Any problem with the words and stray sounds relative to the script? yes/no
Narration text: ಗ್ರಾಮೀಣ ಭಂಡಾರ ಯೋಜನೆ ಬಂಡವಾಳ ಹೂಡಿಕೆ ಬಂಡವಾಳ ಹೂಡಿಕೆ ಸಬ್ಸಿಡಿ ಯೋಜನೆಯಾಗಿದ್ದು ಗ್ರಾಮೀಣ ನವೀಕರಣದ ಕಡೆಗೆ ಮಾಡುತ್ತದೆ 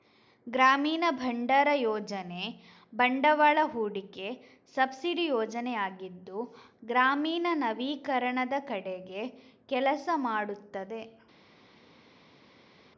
yes